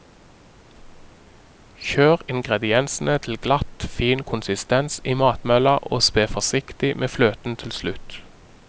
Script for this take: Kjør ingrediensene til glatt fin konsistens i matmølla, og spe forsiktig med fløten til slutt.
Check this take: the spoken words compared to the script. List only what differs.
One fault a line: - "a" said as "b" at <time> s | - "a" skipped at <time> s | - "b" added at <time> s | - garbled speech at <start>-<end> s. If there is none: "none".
none